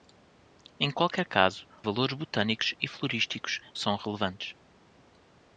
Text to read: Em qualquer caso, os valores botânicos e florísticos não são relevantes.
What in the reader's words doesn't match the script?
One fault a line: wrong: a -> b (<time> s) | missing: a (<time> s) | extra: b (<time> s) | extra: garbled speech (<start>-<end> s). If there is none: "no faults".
missing: os (1.6 s)
missing: não (3.6 s)